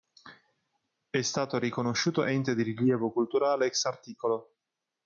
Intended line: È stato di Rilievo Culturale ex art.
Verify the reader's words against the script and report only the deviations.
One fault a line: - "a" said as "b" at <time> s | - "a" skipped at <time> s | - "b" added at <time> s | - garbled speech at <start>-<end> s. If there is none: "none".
- "riconosciuto Ente" added at 1.6 s